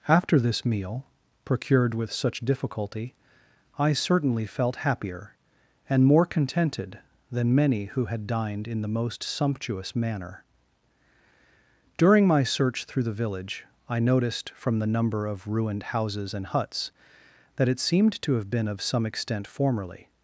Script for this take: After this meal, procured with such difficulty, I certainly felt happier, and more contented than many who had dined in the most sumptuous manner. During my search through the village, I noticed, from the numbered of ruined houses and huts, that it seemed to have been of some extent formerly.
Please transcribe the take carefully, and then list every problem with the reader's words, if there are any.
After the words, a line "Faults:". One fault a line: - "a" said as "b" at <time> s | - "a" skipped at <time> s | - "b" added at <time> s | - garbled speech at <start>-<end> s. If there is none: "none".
After this meal, procured with such difficulty, I certainly felt happier, and more contented than many who had dined in the most sumptuous manner. During my search through the village, I noticed, from the number of ruined houses and huts, that it seemed to have been of some extent formerly.
Faults:
- "numbered" said as "number" at 14.9 s